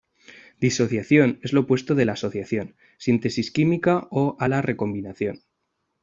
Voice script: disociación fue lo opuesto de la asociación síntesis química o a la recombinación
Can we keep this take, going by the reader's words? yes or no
no